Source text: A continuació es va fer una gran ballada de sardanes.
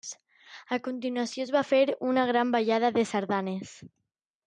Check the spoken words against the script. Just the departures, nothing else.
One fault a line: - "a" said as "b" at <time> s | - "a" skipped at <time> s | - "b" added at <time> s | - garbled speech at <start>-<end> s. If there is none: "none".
none